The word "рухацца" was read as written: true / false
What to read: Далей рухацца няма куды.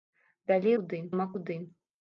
false